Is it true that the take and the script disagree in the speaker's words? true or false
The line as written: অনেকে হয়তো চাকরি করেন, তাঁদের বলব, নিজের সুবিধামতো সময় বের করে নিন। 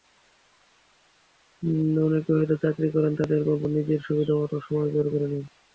false